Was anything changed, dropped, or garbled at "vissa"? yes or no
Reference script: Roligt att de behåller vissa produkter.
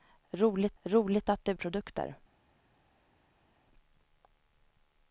yes